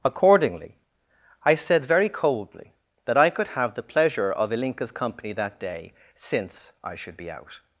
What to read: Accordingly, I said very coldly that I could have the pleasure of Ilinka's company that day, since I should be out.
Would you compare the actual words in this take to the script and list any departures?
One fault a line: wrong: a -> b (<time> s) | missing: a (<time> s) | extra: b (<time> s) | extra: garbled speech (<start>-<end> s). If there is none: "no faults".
no faults